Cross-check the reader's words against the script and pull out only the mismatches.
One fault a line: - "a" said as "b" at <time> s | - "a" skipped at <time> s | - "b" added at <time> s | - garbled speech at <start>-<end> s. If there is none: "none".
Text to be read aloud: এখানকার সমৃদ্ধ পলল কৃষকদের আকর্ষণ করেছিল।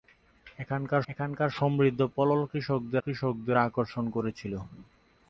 - "এখানকার" added at 1.1 s
- "কৃষকদের" added at 3.0 s